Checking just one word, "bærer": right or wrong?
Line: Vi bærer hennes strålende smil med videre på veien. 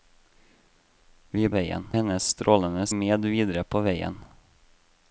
wrong